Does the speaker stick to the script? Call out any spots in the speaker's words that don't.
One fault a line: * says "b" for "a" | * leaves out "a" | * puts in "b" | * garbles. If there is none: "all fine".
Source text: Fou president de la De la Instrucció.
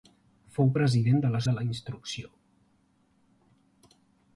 all fine